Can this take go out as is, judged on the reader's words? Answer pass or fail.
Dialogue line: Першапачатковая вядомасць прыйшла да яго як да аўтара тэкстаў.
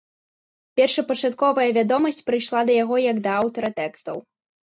pass